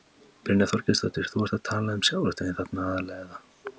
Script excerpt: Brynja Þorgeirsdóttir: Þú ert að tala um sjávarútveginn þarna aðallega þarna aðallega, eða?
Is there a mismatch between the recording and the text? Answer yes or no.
yes